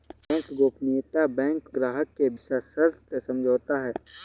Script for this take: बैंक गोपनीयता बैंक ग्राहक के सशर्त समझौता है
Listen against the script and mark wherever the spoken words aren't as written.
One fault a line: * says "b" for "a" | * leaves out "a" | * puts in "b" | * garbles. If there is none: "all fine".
all fine